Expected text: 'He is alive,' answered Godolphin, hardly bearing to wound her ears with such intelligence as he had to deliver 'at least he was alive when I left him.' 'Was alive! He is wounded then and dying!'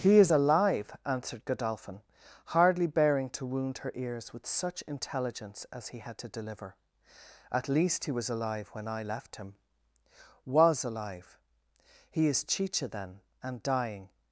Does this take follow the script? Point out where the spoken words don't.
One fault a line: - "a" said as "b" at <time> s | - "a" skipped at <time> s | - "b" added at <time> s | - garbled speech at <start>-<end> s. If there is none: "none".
- "wounded" said as "chicha" at 12.4 s